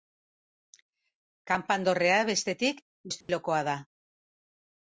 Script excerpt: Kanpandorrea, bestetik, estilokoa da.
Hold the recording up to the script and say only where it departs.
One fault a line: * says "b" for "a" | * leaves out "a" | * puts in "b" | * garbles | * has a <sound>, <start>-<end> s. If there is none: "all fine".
* has a dropout, 3.2-3.3 s